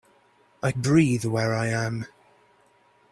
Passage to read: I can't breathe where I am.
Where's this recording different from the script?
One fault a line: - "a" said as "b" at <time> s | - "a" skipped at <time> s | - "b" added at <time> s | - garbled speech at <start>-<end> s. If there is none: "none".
- "can't" skipped at 0.7 s